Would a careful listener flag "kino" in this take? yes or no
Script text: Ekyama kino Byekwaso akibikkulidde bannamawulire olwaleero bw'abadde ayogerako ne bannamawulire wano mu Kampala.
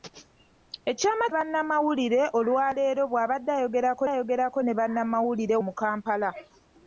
yes